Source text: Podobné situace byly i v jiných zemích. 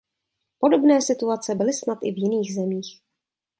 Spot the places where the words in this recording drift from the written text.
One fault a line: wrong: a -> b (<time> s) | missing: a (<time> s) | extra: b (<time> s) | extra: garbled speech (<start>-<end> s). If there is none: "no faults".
extra: snad (1.7 s)